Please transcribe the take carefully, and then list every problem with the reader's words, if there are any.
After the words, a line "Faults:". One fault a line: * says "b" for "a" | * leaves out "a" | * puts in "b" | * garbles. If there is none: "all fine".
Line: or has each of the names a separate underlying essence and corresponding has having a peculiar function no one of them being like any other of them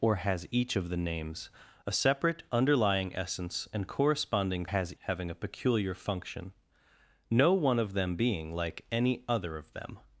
or has each of the names a separate underlying essence and corresponding has having a peculiar function no one of them being like any other of them
Faults:
all fine